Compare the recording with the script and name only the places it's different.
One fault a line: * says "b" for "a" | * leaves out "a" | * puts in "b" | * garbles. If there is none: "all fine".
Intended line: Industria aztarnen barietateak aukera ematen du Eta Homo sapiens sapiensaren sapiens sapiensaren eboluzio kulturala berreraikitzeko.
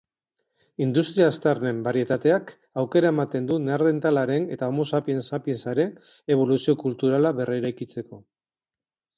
* puts in "Neandertalaren"
* leaves out "sapiens sapiensaren"